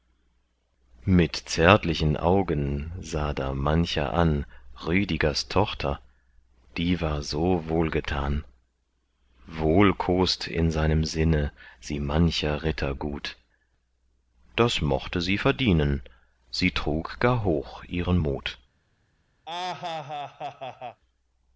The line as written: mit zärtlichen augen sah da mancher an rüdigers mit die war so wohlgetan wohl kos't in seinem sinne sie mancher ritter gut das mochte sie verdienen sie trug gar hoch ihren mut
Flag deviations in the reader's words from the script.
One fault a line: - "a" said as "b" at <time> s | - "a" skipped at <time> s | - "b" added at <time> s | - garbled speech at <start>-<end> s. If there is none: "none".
- "mit" said as "tochter" at 5.5 s